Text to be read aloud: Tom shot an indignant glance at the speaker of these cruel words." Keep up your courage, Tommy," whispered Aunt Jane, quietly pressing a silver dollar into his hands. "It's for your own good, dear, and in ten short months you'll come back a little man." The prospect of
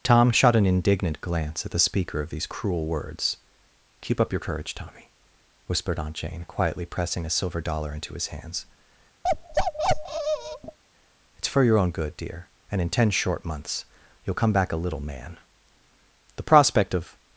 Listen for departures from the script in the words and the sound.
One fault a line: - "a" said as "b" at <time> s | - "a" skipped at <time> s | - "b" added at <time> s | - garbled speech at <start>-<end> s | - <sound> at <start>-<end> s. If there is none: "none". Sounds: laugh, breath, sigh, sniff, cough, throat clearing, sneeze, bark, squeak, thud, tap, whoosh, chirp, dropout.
- bark at 9.2-10.8 s